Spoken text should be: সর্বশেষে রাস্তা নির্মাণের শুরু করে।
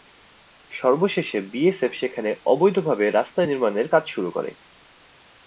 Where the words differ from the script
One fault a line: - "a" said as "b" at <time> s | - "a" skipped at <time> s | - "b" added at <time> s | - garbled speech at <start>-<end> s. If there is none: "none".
- "বিএসএফ সেখানে অবৈধভাবে" added at 1.5 s
- "কাজ" added at 3.9 s